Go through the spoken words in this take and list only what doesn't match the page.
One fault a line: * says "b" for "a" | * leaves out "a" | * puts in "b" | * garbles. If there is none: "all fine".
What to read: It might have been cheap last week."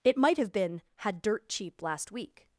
* puts in "had dirt"